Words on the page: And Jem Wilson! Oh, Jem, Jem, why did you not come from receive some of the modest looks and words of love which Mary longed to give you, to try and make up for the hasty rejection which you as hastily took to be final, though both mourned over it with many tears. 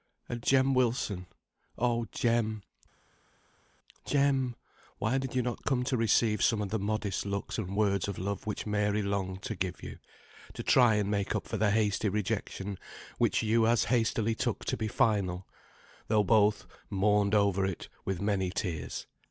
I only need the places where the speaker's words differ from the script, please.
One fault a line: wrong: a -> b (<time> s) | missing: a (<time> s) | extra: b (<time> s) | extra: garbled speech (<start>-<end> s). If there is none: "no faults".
wrong: from -> to (5.9 s)